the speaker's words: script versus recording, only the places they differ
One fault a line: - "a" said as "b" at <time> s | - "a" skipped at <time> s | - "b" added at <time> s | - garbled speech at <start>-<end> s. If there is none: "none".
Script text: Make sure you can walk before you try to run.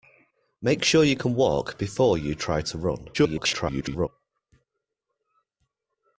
- garbled speech at 3.1-4.1 s